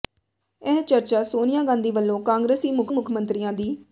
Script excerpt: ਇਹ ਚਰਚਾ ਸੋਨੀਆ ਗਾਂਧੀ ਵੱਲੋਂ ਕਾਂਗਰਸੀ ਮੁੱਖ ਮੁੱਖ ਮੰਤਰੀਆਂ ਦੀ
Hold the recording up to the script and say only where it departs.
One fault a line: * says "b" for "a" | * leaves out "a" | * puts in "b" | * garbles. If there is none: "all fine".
all fine